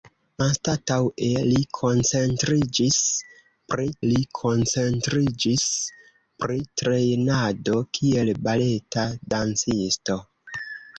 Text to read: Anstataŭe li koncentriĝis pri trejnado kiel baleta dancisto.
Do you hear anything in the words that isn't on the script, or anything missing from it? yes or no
yes